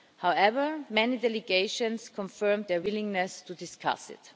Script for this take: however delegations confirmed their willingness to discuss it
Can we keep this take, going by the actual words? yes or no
no